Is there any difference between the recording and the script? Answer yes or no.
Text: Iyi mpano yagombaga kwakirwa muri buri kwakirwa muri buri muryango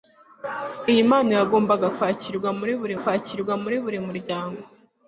no